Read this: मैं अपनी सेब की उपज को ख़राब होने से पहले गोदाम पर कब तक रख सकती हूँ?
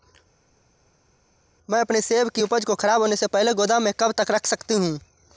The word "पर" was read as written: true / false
false